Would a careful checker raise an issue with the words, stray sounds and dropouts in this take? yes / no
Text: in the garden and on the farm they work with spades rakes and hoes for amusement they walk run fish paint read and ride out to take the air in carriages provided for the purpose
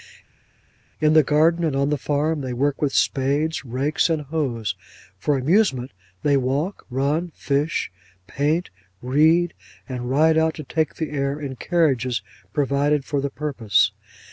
no